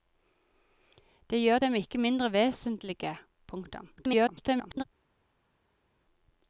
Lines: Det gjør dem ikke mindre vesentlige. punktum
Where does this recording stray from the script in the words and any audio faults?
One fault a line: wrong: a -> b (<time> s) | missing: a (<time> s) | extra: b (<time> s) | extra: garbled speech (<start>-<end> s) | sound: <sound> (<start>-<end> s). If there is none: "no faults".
extra: garbled speech (4.0-4.8 s)